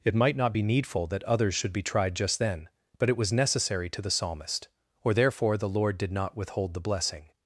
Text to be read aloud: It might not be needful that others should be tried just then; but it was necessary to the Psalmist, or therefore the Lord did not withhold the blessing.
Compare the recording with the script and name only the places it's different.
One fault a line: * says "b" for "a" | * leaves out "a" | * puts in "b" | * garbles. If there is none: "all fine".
all fine